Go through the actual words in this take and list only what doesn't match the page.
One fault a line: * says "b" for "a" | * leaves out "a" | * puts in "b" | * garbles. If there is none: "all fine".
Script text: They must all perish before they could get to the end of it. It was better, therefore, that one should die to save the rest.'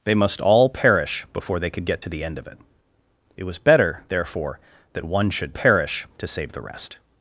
* says "perish" for "die"